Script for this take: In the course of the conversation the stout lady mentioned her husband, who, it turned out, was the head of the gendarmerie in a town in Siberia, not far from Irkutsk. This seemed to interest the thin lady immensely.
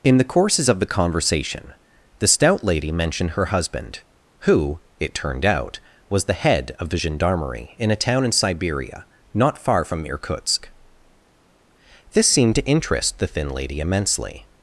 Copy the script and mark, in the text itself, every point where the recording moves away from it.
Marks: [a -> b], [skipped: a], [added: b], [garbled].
In the [course -> courses] of the conversation the stout lady mentioned her husband, who, it turned out, was the head of the gendarmerie in a town in Siberia, not far from Irkutsk. This seemed to interest the thin lady immensely.